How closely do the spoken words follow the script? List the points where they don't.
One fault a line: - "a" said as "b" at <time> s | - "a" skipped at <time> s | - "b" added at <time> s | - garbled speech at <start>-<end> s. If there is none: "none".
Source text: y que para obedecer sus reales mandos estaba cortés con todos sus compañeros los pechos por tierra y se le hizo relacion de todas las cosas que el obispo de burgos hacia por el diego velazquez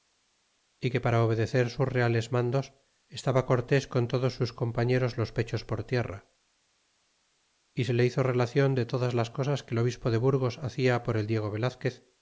none